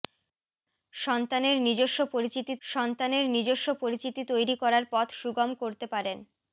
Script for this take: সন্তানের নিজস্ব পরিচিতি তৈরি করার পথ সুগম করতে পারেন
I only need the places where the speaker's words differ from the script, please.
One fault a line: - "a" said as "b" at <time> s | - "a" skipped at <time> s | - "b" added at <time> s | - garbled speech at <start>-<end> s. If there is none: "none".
- "সন্তানের নিজস্ব পরিচিতি" added at 2.6 s